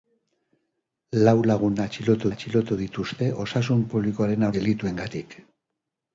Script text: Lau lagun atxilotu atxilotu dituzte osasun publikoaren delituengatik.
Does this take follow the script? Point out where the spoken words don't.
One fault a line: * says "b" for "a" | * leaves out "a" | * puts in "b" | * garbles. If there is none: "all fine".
all fine